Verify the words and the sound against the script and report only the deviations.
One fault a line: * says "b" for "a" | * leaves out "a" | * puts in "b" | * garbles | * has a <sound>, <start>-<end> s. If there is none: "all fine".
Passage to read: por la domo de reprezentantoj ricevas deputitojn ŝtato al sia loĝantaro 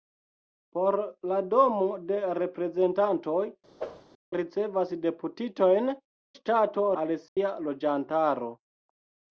* has a whoosh, 3.8-4.1 s
* has a dropout, 7.3-7.4 s